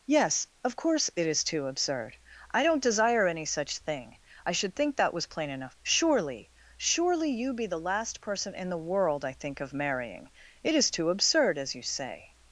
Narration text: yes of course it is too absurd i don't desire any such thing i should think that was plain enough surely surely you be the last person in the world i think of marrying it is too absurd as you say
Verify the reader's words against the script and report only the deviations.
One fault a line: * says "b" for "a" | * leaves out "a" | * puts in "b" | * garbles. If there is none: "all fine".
all fine